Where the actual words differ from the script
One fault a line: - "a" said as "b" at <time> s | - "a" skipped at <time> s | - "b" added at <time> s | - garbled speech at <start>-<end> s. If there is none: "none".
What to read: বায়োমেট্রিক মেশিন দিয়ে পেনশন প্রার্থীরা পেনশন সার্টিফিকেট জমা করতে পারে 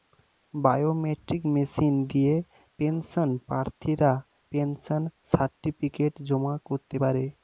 none